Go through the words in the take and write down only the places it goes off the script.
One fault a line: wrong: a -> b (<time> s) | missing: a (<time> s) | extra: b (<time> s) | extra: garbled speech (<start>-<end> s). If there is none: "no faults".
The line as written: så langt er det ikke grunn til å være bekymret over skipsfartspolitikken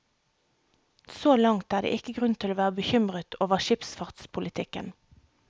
no faults